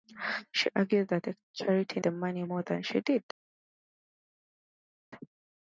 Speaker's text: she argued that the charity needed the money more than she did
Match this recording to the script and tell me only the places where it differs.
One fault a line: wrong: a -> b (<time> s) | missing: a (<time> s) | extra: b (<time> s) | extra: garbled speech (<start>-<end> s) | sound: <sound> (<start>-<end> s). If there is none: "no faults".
missing: needed (2.0 s)